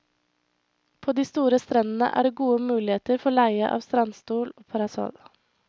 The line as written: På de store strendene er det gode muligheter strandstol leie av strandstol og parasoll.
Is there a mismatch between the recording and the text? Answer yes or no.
yes